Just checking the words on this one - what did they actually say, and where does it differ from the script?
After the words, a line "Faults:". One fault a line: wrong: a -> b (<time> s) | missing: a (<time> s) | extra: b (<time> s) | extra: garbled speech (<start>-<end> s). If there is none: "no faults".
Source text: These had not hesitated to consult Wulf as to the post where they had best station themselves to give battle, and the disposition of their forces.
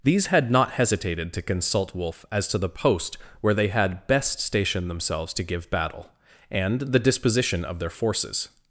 These had not hesitated to consult Wulf as to the post where they had best station themselves to give battle, and the disposition of their forces.
Faults:
no faults